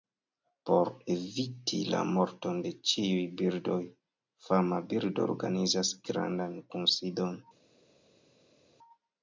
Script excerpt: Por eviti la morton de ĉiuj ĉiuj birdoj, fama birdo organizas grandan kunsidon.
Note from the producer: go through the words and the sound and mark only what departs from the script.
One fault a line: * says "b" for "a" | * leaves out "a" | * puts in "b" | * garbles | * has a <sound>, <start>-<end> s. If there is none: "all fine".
* leaves out "ĉiuj"